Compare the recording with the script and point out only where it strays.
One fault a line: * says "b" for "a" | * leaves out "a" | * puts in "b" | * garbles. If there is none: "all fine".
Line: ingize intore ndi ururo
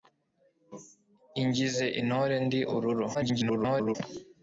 * garbles